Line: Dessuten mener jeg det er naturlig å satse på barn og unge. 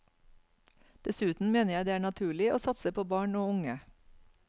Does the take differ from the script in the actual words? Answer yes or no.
no